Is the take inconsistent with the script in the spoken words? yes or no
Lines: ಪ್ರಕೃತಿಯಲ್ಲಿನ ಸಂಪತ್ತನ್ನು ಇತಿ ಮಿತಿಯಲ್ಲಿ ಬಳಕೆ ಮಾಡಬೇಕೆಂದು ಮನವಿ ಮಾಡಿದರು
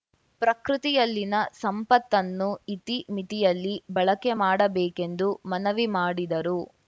no